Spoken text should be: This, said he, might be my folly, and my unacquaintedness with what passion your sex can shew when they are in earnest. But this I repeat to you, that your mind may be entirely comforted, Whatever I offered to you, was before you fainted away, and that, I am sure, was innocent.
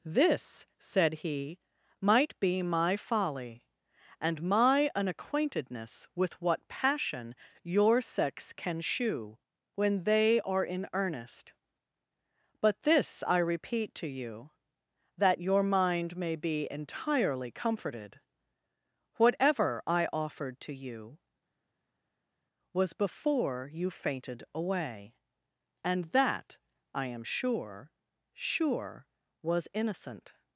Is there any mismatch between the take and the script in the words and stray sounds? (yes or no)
yes